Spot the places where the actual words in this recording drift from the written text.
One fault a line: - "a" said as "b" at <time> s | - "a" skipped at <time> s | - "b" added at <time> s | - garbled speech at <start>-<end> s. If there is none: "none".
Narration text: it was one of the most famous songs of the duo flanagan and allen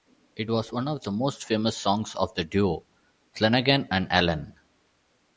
none